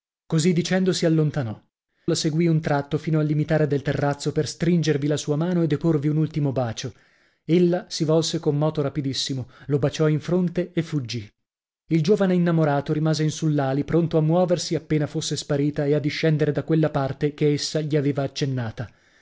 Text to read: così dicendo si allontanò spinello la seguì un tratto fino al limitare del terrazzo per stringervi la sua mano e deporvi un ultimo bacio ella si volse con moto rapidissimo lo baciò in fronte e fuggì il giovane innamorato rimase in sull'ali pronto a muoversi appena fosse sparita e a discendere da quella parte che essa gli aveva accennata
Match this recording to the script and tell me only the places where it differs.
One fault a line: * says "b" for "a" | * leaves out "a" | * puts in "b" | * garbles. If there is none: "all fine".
* leaves out "spinello"